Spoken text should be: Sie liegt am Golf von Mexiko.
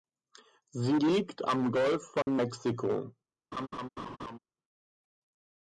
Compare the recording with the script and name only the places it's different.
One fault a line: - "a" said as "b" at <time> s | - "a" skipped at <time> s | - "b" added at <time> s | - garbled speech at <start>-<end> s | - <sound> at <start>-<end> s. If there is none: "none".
- dropout at 2.2-2.3 s
- laugh at 3.5-4.4 s